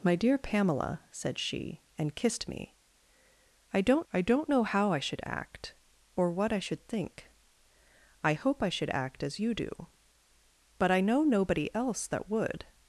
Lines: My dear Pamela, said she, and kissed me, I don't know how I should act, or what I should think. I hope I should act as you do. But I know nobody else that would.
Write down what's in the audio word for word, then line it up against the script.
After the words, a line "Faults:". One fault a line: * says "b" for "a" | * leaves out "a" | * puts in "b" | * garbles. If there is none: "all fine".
My dear Pamela, said she, and kissed me, I don't I don't know how I should act, or what I should think. I hope I should act as you do. But I know nobody else that would.
Faults:
* puts in "I don't"